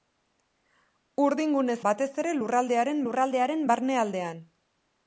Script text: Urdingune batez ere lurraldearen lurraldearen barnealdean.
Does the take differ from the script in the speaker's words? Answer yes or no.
no